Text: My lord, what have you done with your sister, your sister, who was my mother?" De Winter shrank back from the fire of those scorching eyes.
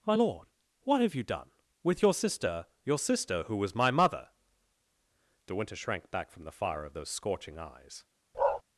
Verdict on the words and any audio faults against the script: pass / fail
fail